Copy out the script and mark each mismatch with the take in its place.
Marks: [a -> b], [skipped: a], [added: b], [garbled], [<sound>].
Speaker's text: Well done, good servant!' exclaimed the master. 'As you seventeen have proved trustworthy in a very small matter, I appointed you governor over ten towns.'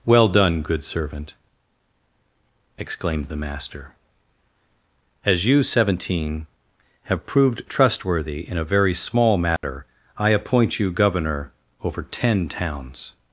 Well done, good servant!' exclaimed the master. 'As you seventeen have proved trustworthy in a very small matter, [dropout] I [appointed -> appoint] you governor over ten towns.'